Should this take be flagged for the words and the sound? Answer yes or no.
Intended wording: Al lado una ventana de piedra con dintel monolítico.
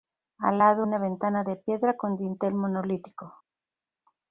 no